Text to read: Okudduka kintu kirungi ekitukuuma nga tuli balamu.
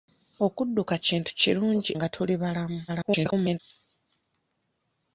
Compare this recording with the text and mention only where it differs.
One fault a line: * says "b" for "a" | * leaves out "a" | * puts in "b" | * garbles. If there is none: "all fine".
* leaves out "ekitukuuma"
* garbles